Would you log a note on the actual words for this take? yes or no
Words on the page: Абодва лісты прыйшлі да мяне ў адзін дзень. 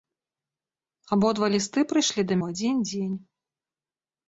yes